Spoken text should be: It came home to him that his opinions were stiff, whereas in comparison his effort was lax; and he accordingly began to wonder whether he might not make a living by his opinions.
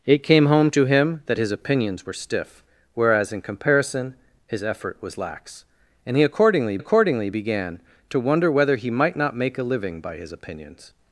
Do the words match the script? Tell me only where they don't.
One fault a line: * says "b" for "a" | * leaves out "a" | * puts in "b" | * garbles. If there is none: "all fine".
* puts in "accordingly"